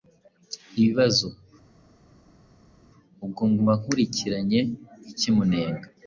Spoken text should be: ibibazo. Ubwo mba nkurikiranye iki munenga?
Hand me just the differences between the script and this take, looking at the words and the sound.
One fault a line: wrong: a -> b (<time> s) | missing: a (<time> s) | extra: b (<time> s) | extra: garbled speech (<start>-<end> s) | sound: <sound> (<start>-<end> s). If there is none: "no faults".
no faults